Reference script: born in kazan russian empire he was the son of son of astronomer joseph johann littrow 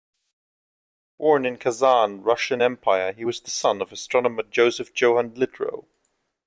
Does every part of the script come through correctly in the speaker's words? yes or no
no